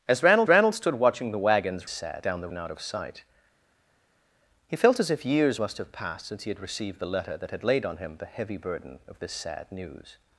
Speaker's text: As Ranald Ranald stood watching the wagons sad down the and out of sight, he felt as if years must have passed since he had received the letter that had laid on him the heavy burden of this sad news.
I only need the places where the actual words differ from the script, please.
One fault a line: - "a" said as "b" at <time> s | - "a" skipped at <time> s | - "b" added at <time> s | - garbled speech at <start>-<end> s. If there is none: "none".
none